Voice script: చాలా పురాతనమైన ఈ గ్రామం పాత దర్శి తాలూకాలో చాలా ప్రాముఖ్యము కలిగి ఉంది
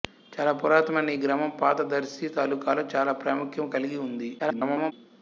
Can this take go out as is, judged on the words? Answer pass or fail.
fail